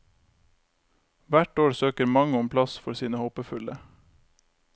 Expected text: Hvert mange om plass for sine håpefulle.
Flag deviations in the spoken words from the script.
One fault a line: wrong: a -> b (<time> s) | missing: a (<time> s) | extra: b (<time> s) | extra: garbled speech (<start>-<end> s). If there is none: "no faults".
extra: år søker (1.6 s)